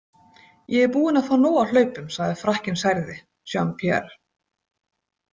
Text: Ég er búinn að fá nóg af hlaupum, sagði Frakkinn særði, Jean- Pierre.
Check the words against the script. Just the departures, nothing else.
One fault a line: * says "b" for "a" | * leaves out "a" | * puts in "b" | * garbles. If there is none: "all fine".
all fine